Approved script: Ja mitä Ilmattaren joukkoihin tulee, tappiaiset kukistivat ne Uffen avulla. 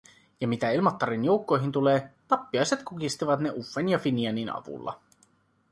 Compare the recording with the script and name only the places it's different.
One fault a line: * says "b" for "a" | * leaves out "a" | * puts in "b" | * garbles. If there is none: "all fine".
* puts in "ja Finianin"